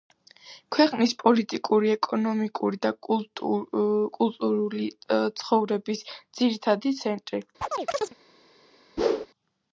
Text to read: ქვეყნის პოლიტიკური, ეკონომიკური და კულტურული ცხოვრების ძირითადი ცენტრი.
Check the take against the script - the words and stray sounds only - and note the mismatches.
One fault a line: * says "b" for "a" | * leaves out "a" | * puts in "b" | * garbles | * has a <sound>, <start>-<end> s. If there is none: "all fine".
* has a chirp, 7.6-8.2 s
* has a whoosh, 9.0-9.3 s